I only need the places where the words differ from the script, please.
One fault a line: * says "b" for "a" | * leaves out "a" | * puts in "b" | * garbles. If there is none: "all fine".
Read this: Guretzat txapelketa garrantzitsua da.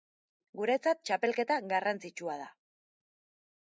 all fine